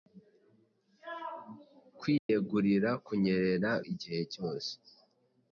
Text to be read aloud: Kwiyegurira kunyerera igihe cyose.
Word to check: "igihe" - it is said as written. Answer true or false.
true